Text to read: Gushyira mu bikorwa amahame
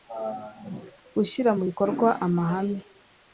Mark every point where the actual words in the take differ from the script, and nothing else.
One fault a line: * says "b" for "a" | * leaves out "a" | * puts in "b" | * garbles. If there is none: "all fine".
all fine